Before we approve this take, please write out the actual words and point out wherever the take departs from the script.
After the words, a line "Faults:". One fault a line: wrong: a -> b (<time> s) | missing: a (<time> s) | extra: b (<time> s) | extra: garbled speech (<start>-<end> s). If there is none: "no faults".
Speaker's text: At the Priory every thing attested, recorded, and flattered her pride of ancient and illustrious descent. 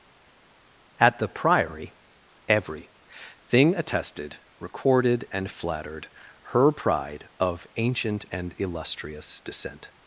At the Priory every thing attested, recorded, and flattered her pride of ancient and illustrious descent.
Faults:
no faults